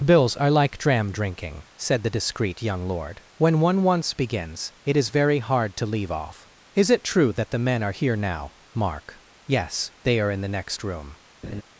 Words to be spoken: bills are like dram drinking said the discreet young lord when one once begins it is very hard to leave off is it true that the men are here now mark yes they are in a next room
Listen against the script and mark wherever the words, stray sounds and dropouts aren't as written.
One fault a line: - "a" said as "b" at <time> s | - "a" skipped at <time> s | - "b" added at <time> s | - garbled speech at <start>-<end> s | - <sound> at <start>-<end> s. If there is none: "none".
- "a" said as "the" at 10.4 s
- laugh at 11.4-11.6 s